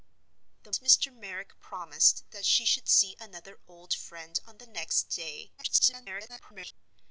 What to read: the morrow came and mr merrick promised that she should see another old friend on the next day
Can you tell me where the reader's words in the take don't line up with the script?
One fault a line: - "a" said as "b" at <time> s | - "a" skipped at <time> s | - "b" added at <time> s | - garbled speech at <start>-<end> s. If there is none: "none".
- "morrow came and" skipped at 0.7 s
- garbled speech at 5.6-6.7 s